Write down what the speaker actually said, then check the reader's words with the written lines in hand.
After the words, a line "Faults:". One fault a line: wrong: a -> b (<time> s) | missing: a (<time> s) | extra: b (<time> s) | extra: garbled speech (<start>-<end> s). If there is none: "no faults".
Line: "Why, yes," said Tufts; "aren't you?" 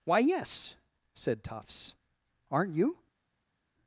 "Why, yes," said Tufts; "aren't you?"
Faults:
no faults